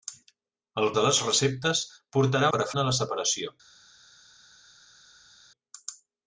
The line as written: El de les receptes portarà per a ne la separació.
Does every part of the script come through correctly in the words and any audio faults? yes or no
yes